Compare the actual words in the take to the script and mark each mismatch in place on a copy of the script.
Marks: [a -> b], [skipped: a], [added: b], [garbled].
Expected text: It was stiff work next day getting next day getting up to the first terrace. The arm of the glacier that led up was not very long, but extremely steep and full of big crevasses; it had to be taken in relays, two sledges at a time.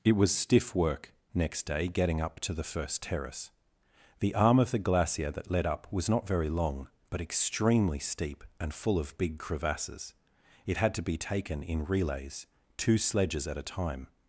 It was stiff work next day getting [skipped: next day getting] up to the first terrace. The arm of the glacier that led up was not very long, but extremely steep and full of big crevasses; it had to be taken in relays, two sledges at a time.